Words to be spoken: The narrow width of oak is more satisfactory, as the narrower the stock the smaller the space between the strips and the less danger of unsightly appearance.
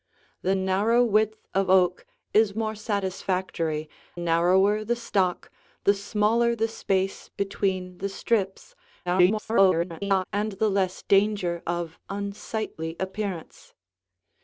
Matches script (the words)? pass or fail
fail